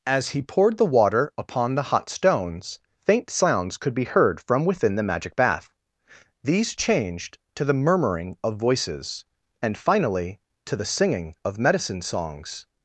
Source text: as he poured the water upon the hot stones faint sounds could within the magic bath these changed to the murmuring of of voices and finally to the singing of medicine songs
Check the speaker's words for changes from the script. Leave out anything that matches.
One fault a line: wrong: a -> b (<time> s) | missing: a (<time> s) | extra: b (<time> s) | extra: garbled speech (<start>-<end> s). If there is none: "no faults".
extra: be heard from (3.9 s)
missing: of (8.6 s)